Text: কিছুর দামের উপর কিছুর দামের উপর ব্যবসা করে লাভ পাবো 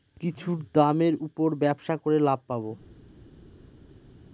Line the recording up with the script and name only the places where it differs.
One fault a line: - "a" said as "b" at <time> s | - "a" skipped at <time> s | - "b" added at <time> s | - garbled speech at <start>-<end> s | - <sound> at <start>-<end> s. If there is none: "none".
- "কিছুর দামের উপর" skipped at 1.5 s